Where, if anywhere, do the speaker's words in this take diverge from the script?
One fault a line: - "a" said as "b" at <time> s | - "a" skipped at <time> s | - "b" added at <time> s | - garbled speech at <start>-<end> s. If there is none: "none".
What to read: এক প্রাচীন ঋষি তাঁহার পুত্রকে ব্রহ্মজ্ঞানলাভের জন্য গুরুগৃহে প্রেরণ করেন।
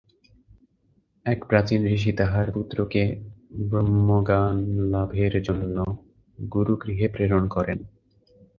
none